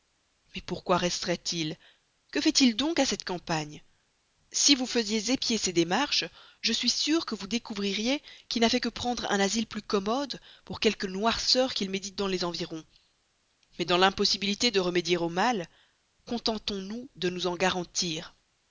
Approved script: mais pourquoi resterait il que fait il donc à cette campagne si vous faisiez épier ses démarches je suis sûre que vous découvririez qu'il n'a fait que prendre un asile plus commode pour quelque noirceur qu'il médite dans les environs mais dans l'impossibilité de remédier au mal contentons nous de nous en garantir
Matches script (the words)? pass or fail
pass